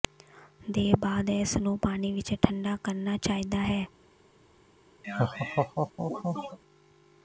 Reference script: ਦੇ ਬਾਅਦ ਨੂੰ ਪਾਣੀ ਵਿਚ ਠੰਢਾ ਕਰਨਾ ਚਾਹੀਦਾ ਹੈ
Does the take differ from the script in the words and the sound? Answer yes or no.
yes